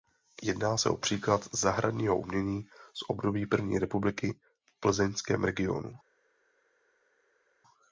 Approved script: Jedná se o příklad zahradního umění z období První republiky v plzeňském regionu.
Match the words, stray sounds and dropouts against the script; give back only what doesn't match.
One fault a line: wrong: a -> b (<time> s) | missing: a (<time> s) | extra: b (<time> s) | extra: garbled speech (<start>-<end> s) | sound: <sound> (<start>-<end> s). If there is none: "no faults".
no faults